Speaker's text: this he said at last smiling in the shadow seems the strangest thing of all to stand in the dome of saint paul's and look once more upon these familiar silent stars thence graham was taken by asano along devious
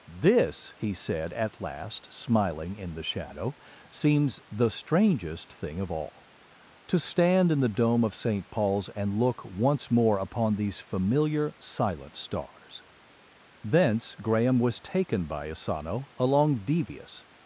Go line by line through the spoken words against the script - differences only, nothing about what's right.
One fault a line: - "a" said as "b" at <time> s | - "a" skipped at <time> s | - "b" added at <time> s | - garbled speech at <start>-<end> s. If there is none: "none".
none